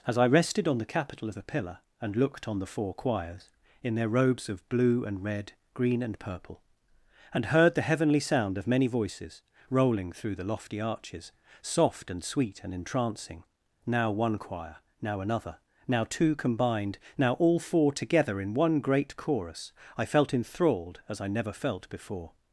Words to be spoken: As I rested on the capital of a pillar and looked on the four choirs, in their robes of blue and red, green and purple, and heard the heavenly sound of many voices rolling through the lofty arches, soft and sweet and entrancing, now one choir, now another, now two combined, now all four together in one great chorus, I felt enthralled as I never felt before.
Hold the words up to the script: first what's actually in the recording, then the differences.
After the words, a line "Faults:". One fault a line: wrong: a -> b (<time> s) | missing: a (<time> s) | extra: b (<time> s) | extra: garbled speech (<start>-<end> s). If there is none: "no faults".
As I rested on the capital of a pillar and looked on the four choirs, in their robes of blue and red, green and purple, and heard the heavenly sound of many voices rolling through the lofty arches, soft and sweet and entrancing, now one choir, now another, now two combined, now all four together in one great chorus, I felt enthralled as I never felt before.
Faults:
no faults